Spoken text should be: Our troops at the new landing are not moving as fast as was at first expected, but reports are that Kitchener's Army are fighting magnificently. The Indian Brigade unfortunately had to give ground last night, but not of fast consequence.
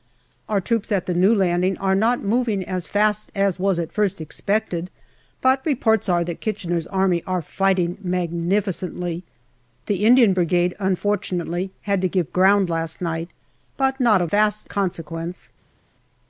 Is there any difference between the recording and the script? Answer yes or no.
no